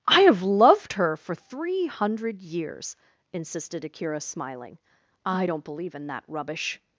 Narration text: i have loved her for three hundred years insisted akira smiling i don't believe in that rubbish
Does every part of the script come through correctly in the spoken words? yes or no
yes